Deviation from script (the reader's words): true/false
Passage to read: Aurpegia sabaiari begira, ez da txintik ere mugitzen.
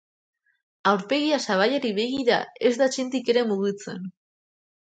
false